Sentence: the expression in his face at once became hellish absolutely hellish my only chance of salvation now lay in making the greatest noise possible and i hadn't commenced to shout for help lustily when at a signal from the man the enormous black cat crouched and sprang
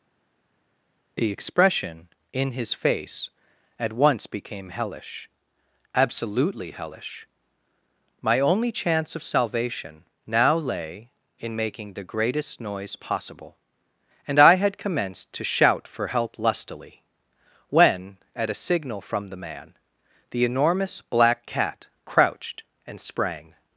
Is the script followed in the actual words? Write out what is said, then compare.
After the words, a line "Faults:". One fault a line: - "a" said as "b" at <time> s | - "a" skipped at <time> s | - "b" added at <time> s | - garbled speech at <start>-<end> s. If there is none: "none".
the expression in his face at once became hellish absolutely hellish my only chance of salvation now lay in making the greatest noise possible and i had commenced to shout for help lustily when at a signal from the man the enormous black cat crouched and sprang
Faults:
- "hadn't" said as "had" at 14.6 s